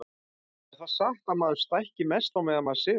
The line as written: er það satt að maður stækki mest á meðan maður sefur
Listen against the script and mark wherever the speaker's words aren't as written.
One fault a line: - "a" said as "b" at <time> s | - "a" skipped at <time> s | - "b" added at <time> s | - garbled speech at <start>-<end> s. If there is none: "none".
none